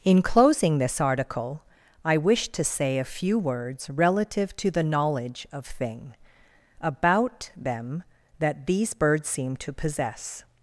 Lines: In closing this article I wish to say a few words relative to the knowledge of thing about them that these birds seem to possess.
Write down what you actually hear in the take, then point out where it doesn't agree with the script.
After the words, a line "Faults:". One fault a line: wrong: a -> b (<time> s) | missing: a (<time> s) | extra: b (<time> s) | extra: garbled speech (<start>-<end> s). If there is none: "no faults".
In closing this article I wish to say a few words relative to the knowledge of thing about them that these birds seem to possess.
Faults:
no faults